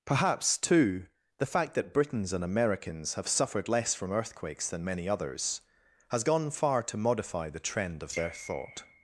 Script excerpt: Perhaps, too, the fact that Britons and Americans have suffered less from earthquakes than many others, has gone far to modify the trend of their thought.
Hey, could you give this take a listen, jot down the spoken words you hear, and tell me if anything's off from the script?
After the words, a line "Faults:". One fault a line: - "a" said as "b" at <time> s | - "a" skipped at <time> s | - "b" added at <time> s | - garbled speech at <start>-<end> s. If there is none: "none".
Perhaps, too, the fact that Britons and Americans have suffered less from earthquakes than many others, has gone far to modify the trend of their thought.
Faults:
none